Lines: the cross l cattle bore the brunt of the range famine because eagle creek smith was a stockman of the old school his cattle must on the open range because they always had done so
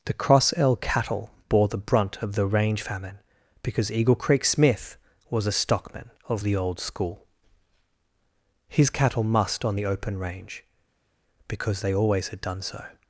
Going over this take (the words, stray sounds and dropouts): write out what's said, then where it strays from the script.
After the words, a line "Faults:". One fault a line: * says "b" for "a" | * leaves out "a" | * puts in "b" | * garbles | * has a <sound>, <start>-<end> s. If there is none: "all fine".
the cross l cattle bore the brunt of the range famine because eagle creek smith was a stockman of the old school his cattle must on the open range because they always had done so
Faults:
all fine